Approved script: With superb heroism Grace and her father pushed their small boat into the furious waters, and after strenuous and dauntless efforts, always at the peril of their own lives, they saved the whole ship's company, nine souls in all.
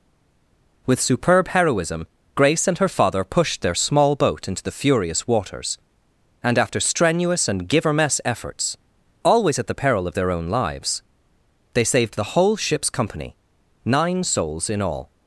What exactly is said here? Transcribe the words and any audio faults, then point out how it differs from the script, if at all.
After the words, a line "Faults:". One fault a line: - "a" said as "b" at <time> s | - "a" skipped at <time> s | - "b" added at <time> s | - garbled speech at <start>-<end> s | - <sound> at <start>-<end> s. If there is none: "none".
With superb heroism Grace and her father pushed their small boat into the furious waters, and after strenuous and givermess efforts, always at the peril of their own lives, they saved the whole ship's company, nine souls in all.
Faults:
- "dauntless" said as "givermess" at 7.7 s